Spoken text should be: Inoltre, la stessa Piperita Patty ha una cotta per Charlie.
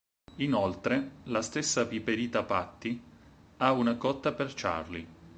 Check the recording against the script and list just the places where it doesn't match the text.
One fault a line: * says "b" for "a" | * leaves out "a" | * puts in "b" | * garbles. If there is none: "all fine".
all fine